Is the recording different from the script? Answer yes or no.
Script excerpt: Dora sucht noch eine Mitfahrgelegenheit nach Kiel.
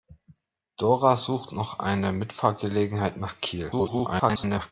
yes